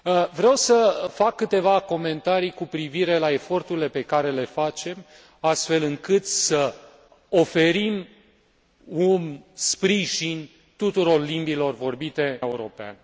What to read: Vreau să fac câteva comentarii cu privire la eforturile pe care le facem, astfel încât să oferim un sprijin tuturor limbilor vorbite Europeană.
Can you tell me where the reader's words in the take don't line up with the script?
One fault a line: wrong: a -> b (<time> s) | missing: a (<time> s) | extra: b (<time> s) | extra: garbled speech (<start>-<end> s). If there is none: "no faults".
no faults